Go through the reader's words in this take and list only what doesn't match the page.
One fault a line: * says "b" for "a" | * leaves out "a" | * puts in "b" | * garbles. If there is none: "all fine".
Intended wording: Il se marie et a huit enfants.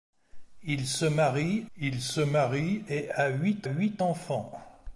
* puts in "il se marie"
* puts in "huit"